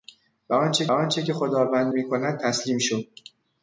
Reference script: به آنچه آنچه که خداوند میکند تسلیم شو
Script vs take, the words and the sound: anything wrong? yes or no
no